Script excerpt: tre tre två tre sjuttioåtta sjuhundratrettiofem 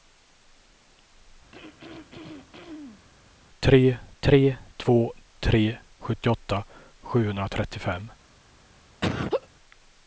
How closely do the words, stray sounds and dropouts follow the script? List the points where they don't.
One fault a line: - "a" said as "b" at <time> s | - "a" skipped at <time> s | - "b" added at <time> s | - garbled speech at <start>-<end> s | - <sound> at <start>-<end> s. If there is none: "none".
- throat clearing at 1.5-3.1 s
- laugh at 9.0-9.5 s